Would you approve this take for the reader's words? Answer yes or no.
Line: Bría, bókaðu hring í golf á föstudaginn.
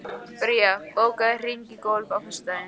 yes